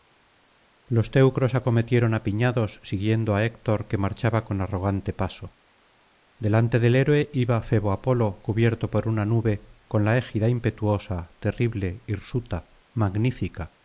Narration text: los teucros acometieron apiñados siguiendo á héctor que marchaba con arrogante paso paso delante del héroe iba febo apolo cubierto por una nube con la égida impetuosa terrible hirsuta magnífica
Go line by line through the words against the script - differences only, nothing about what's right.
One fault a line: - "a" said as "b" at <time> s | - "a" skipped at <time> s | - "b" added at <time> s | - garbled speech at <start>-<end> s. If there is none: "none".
- "paso" skipped at 5.6 s